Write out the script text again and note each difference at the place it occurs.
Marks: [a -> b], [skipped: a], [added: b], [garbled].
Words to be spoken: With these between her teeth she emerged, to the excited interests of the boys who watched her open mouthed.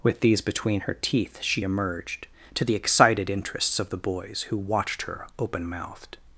With these between her teeth she emerged, to the excited interests of the boys who watched her open mouthed.